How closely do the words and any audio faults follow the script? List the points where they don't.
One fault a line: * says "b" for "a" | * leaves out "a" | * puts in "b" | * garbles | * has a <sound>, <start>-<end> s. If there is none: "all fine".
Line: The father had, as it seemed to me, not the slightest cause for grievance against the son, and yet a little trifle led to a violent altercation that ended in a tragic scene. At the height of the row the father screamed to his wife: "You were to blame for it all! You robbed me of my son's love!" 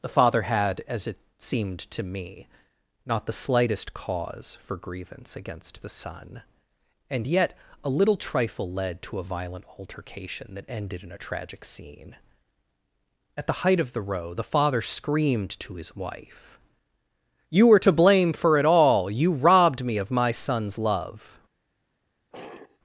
* has a sigh, 22.3-22.8 s